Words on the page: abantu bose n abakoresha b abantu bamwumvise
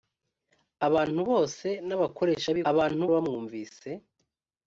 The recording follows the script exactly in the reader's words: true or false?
true